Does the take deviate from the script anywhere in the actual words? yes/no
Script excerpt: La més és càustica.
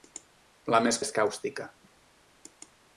no